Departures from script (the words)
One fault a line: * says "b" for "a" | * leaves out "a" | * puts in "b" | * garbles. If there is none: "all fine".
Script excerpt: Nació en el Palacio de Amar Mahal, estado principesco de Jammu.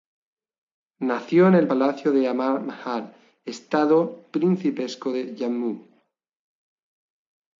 all fine